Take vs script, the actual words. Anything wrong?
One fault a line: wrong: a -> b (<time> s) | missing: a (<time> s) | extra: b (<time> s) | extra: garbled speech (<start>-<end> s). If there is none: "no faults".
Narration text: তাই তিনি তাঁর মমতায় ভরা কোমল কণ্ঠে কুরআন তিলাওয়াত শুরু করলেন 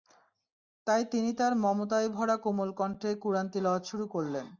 no faults